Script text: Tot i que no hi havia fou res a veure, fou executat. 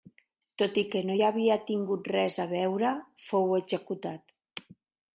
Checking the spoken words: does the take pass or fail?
fail